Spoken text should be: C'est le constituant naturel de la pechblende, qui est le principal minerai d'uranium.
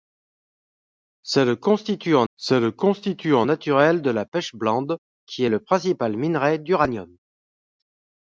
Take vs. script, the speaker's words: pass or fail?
fail